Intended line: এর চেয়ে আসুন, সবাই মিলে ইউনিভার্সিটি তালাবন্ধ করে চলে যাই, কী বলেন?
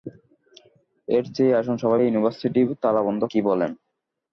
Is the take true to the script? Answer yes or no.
no